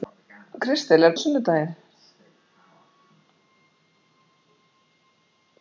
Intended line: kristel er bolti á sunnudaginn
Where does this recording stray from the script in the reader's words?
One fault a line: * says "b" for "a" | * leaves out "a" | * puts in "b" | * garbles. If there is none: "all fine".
* leaves out "bolti"